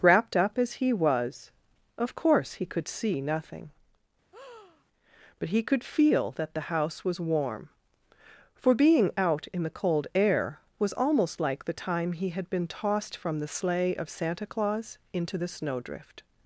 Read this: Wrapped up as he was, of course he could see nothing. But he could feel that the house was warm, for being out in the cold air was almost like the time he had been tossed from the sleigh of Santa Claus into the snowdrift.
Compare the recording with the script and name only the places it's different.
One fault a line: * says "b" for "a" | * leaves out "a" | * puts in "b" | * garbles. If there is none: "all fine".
all fine